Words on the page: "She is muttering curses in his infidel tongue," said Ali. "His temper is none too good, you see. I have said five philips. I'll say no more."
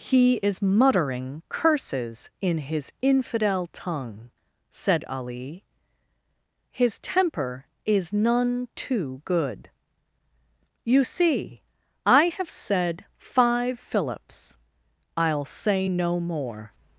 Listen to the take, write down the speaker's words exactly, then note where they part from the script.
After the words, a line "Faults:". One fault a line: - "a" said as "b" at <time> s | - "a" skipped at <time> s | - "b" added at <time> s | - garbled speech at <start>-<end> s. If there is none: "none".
"He is muttering curses in his infidel tongue," said Ali. "His temper is none too good, you see. I have said five philips. I'll say no more."
Faults:
- "She" said as "He" at 0.0 s